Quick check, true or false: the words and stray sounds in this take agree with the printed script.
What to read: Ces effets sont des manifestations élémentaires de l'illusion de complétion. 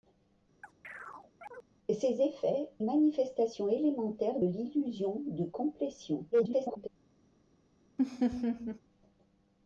false